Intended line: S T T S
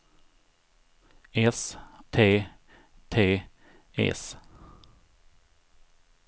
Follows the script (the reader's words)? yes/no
yes